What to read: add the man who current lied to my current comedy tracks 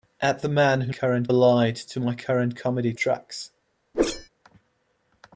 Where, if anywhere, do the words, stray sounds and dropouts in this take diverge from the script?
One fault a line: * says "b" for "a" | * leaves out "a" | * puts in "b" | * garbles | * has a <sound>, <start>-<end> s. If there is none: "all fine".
* has a whoosh, 3.9-4.3 s